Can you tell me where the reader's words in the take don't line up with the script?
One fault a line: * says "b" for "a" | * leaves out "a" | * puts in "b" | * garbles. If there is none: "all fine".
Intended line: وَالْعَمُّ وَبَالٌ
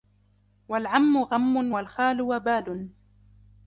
* puts in "غَمٌّ وَالْخَالُ"